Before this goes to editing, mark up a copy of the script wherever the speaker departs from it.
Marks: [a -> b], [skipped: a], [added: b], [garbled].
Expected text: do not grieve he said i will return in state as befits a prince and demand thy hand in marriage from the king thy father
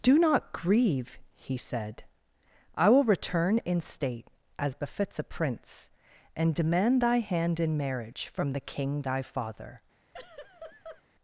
do not grieve he said i will return in state as befits a prince and demand thy hand in marriage from the king thy father